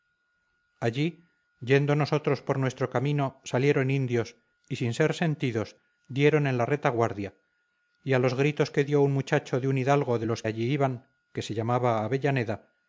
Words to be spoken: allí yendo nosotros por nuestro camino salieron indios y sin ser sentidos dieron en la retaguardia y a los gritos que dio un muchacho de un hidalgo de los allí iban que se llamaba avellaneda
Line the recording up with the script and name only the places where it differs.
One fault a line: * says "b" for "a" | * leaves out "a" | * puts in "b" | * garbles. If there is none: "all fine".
all fine